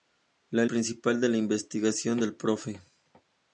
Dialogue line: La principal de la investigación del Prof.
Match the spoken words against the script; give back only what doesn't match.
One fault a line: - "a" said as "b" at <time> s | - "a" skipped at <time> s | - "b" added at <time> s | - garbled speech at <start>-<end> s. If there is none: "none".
none